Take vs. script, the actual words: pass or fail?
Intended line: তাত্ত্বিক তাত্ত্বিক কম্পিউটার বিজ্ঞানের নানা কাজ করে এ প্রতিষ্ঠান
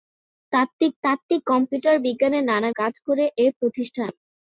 pass